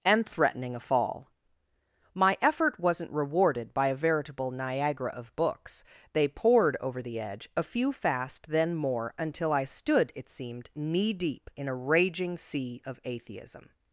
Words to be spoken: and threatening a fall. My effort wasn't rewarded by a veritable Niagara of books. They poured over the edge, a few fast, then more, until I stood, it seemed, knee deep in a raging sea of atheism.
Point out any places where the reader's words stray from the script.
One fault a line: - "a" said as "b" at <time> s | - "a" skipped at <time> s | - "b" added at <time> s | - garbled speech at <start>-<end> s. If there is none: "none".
none